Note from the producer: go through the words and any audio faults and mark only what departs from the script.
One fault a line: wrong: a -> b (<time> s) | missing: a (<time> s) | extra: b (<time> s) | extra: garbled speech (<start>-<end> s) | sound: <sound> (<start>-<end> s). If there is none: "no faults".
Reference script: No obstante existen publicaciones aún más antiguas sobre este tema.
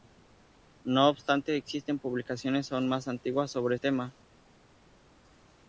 missing: este (3.8 s)